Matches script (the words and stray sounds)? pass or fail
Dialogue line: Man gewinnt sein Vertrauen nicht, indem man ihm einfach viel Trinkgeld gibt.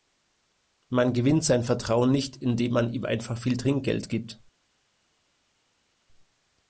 pass